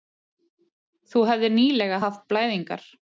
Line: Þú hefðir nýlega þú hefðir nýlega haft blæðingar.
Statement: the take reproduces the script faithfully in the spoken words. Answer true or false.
false